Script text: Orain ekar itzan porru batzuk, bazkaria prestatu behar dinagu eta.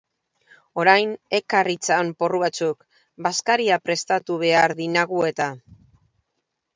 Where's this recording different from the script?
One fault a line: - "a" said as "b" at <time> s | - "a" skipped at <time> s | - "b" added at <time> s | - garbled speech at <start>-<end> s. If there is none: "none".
none